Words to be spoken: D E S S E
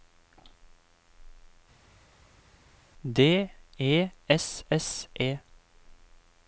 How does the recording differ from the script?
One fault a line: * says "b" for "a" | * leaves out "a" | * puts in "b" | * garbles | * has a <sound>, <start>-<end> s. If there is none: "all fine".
all fine